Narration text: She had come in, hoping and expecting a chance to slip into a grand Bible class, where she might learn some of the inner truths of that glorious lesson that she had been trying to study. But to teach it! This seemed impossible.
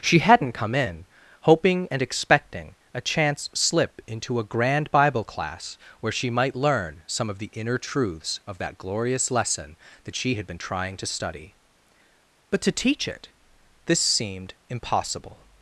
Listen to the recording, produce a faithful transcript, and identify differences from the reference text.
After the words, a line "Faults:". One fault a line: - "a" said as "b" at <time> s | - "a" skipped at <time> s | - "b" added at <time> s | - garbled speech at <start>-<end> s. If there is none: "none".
She hadn't come in, hoping and expecting a chance slip into a grand Bible class, where she might learn some of the inner truths of that glorious lesson that she had been trying to study. But to teach it! This seemed impossible.
Faults:
- "had" said as "hadn't" at 0.2 s
- "to" skipped at 3.5 s